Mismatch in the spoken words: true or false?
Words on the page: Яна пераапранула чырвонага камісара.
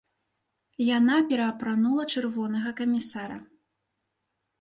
false